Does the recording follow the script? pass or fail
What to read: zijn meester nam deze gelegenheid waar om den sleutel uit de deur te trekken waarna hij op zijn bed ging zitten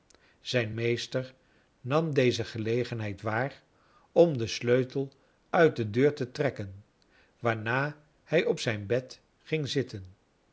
pass